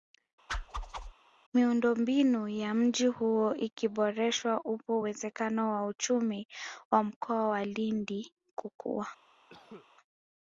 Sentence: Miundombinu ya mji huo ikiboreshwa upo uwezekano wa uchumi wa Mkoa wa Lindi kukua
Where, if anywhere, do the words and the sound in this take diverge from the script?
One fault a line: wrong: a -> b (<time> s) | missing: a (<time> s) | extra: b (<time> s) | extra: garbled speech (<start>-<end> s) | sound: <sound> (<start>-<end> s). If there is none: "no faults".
sound: whoosh (0.5-1.1 s)
sound: cough (9.5-9.9 s)